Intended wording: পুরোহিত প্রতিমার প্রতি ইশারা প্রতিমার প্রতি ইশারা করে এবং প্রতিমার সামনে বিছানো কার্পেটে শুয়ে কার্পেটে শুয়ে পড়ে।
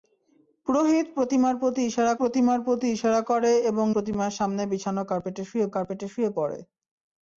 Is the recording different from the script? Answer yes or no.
no